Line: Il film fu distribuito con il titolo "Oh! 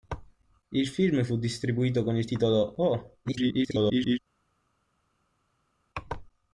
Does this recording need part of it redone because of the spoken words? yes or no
yes